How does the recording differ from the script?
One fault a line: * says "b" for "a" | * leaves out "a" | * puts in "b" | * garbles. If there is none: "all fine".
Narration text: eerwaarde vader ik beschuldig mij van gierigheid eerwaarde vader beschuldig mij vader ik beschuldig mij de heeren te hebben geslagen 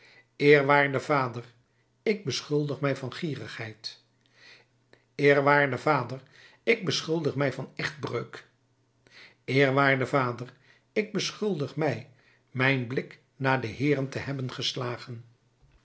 * puts in "ik"
* puts in "van echtbreuk eerwaarde"
* puts in "mijn blik naar"